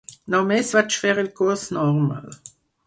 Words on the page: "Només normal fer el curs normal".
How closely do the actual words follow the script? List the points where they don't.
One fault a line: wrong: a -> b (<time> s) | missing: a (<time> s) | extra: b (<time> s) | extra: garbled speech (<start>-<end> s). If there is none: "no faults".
wrong: normal -> vaig (0.8 s)